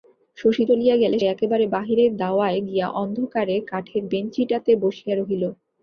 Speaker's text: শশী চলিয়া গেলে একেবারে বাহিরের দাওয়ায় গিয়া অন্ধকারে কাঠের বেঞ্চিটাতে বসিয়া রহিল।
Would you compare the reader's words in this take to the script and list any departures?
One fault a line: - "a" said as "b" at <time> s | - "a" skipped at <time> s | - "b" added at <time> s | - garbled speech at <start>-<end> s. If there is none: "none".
none